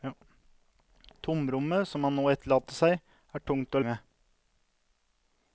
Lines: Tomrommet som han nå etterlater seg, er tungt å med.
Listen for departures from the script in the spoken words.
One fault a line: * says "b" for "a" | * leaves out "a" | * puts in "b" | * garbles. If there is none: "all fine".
all fine